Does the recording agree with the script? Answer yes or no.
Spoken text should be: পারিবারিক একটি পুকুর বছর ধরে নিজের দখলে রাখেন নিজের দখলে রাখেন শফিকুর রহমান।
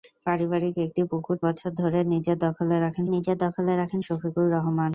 yes